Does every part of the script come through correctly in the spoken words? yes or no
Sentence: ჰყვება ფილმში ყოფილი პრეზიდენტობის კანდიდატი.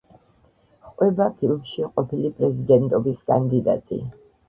yes